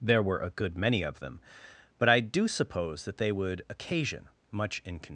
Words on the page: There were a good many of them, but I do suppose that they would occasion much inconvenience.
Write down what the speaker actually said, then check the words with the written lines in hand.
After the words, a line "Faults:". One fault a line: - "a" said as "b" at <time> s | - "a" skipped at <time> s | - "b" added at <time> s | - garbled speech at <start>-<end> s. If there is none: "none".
There were a good many of them, but I do suppose that they would occasion much inconvenience.
Faults:
none